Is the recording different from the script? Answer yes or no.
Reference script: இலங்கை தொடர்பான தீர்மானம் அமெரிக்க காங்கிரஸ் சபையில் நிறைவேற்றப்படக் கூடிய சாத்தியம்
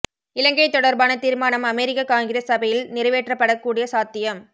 no